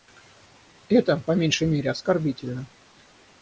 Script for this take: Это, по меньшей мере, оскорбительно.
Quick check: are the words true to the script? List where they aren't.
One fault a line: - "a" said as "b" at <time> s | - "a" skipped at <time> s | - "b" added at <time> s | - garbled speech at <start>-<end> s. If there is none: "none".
none